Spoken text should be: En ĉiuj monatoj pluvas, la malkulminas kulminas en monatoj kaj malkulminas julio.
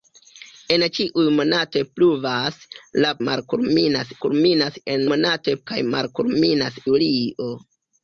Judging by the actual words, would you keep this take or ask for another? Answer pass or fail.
pass